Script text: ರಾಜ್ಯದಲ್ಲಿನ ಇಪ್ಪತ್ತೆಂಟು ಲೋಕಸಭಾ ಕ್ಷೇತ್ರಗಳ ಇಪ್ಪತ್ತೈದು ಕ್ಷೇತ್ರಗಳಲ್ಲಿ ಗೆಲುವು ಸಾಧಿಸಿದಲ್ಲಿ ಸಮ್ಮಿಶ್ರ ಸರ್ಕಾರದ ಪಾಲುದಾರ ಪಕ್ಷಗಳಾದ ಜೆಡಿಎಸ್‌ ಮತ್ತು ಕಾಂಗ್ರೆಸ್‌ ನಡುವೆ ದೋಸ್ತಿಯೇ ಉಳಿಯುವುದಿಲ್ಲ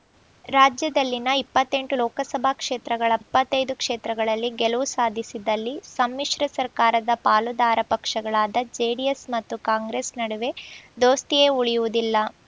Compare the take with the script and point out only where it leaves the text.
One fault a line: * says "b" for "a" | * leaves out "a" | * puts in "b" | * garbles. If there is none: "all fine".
all fine